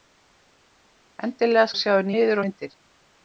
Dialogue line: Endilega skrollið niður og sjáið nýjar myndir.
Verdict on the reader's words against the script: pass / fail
fail